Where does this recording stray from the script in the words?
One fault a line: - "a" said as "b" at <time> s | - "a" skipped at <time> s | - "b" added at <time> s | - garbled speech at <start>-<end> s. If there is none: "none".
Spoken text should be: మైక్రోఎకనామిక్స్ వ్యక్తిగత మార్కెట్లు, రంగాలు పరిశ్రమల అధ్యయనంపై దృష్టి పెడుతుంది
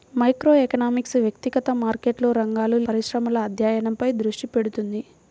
none